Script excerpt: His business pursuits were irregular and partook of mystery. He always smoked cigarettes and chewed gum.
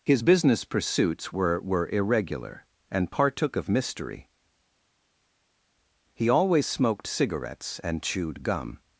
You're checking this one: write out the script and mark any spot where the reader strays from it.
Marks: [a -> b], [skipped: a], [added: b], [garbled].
His business pursuits were [added: were] irregular and partook of mystery. He always smoked cigarettes and chewed gum.